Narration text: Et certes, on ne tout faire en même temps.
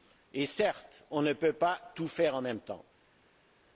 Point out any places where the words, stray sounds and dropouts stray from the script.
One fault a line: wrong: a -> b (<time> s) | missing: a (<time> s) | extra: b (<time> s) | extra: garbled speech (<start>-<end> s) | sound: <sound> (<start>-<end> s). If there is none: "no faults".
extra: peut pas (1.3 s)